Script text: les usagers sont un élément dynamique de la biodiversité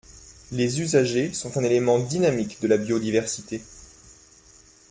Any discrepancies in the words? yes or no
no